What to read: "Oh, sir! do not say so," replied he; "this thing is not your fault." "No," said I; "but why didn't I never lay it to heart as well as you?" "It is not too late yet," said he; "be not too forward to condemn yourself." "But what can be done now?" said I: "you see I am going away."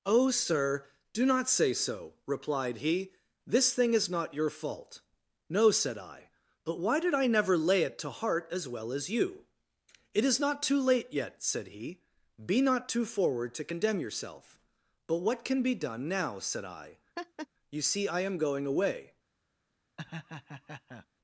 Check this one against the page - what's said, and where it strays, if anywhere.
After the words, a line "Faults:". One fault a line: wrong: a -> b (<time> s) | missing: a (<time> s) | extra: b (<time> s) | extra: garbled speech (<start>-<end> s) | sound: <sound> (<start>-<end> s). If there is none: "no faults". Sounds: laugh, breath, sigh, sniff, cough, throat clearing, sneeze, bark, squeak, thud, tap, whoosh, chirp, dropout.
"Oh, sir! do not say so," replied he; "this thing is not your fault." "No," said I; "but why did I never lay it to heart as well as you?" "It is not too late yet," said he; "be not too forward to condemn yourself." "But what can be done now?" said I: "you see I am going away."
Faults:
wrong: didn't -> did (7.0 s)
sound: laugh (17.2-17.5 s)
sound: laugh (20.0-21.1 s)